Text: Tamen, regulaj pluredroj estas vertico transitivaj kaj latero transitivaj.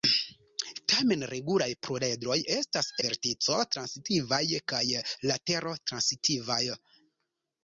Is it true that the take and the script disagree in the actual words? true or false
false